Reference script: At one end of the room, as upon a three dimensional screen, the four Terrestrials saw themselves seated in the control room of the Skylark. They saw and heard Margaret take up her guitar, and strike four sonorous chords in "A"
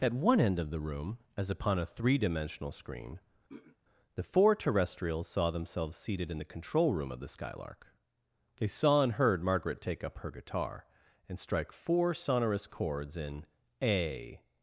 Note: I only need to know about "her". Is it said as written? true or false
true